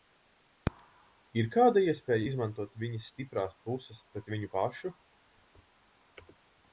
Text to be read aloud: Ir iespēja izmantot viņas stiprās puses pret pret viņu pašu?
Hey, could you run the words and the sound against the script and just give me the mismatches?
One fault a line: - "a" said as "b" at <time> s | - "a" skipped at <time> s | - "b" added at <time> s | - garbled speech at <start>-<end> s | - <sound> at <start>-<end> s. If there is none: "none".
- "kāda" added at 1.6 s
- "pret" skipped at 4.3 s